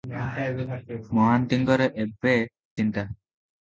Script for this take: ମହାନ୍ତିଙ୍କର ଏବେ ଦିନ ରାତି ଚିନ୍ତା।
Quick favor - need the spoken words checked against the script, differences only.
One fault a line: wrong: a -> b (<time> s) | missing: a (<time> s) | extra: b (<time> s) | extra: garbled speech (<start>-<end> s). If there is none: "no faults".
missing: ଦିନ ରାତି (2.4 s)